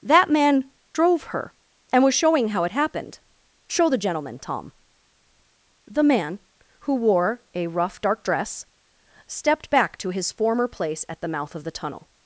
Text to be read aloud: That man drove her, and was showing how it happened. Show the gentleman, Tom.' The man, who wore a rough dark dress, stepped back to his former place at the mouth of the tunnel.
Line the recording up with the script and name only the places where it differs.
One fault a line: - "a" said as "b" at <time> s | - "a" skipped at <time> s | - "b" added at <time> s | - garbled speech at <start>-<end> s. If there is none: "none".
none